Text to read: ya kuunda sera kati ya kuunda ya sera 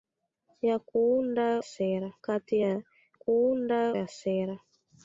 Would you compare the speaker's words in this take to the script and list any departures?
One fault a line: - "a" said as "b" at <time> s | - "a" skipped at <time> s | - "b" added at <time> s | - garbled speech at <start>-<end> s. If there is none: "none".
none